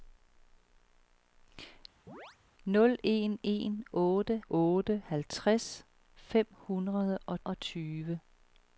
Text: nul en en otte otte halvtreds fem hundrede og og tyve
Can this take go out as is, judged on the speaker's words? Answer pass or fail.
pass